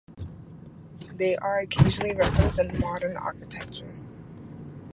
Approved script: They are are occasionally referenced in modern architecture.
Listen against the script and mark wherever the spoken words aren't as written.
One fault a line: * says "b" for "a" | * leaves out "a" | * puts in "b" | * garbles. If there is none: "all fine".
* leaves out "are"